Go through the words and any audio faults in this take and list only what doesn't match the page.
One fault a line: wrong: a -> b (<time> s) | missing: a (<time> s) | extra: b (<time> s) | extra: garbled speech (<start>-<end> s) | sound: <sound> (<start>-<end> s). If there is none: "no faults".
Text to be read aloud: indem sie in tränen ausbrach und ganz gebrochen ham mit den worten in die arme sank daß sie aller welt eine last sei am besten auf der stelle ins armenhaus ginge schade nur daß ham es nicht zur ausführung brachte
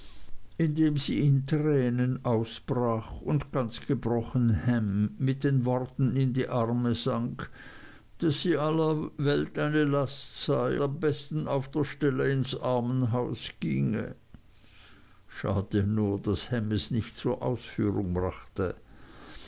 no faults